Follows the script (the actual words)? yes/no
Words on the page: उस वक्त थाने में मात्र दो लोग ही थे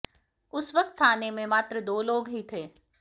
yes